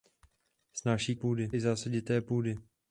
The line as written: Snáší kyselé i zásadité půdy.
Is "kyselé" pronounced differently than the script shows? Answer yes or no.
yes